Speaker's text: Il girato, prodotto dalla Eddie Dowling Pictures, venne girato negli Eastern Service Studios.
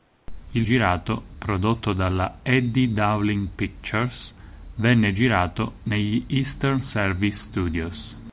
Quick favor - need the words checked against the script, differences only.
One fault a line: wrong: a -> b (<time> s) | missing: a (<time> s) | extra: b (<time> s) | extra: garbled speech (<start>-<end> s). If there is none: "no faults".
no faults